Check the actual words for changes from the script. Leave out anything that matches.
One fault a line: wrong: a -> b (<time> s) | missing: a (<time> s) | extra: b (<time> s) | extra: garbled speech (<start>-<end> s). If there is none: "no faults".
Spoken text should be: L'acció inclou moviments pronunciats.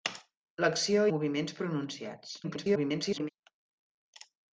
missing: inclou (1.0 s)
extra: garbled speech (2.4-3.3 s)